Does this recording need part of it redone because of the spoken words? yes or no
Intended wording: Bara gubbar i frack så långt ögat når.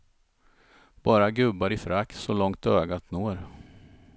no